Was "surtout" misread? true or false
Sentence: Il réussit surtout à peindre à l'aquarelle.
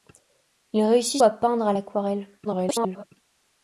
true